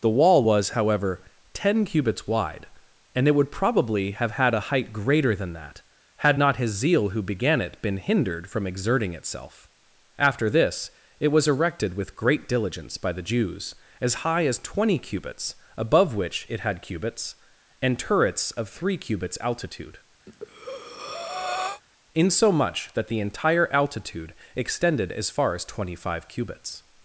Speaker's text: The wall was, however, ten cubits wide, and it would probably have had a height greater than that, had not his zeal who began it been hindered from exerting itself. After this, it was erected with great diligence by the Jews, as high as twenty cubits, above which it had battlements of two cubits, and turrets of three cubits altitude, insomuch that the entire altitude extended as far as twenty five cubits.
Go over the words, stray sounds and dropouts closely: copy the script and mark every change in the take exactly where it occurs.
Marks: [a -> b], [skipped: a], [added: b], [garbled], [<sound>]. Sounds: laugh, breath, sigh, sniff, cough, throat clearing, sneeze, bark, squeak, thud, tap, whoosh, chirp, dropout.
The wall was, however, ten cubits wide, and it would probably have had a height greater than that, had not his zeal who began it been hindered from exerting itself. After this, it was erected with great diligence by the Jews, as high as twenty cubits, above which it had [skipped: battlements of two] cubits, and turrets of three cubits altitude, [breath] insomuch that the entire altitude extended as far as twenty five cubits.